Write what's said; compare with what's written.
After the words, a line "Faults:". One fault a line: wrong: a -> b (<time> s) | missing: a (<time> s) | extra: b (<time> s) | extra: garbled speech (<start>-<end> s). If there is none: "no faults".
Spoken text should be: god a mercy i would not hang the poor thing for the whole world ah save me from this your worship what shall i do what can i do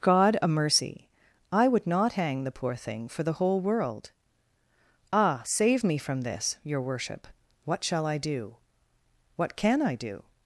god a mercy i would not hang the poor thing for the whole world ah save me from this your worship what shall i do what can i do
Faults:
no faults